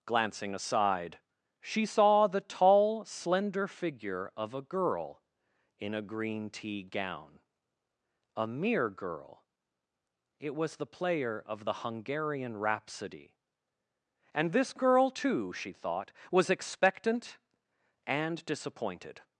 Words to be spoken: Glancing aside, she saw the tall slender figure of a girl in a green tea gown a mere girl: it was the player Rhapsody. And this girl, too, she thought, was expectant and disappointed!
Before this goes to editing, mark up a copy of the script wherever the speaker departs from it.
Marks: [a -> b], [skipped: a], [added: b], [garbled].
Glancing aside, she saw the tall slender figure of a girl in a green tea gown a mere girl: it was the player [added: of the Hungarian] Rhapsody. And this girl, too, she thought, was expectant and disappointed!